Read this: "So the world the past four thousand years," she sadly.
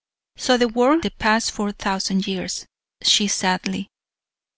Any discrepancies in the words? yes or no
no